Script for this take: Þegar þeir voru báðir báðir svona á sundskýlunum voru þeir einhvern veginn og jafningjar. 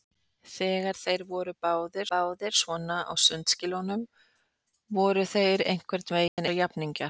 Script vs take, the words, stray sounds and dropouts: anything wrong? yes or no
yes